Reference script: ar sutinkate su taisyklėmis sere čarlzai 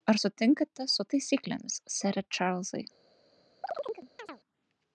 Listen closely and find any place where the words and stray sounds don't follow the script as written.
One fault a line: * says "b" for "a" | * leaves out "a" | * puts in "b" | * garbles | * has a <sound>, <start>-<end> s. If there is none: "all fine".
* has a chirp, 3.6-4.4 s